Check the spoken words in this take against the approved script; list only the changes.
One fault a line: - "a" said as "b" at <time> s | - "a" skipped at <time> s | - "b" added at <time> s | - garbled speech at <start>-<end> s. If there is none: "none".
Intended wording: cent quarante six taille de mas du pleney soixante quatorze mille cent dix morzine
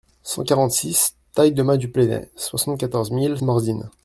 - "cent dix" skipped at 3.4 s